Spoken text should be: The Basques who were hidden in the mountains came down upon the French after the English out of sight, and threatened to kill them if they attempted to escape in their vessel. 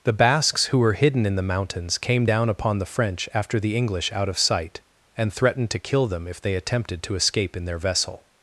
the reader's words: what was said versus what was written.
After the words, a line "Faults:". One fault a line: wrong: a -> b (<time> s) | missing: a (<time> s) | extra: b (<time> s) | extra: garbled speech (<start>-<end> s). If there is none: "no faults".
The Basques who were hidden in the mountains came down upon the French after the English out of sight, and threatened to kill them if they attempted to escape in their vessel.
Faults:
no faults